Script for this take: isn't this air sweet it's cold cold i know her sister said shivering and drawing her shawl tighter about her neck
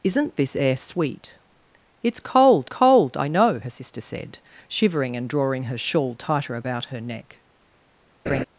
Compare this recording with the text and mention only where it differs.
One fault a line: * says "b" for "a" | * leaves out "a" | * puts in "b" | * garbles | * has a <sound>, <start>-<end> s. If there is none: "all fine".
* has a laugh, 8.3-8.4 s